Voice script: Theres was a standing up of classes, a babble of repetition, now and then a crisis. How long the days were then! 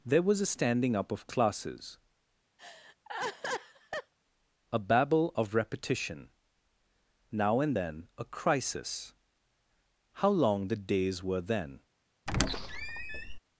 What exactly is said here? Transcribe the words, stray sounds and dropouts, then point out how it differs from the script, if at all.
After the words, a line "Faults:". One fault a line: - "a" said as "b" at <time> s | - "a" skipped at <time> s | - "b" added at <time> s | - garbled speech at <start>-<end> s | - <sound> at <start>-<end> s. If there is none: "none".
There was a standing up of classes, a babble of repetition, now and then a crisis. How long the days were then!
Faults:
- "Theres" said as "There" at 0.0 s
- laugh at 2.6-4.1 s
- squeak at 12.3-13.4 s